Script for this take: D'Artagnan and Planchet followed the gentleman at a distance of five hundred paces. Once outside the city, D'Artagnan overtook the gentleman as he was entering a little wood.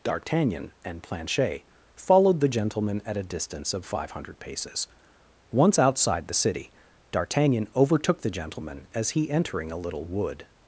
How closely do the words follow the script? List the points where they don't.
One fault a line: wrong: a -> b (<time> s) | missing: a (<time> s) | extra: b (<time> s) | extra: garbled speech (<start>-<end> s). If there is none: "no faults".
missing: was (9.3 s)